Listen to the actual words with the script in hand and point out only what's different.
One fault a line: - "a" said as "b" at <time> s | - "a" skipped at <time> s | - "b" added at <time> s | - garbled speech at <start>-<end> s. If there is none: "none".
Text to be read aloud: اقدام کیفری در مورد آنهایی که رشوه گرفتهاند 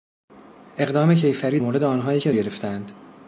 - "در" skipped at 1.6 s
- "رشوه" skipped at 2.3 s